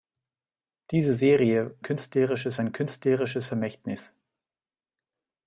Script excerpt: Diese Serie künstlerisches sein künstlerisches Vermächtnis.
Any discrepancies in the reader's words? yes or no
no